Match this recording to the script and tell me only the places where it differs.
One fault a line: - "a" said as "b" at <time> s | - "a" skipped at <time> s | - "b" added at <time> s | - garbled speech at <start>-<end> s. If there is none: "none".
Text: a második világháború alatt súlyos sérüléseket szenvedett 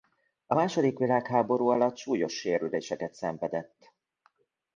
none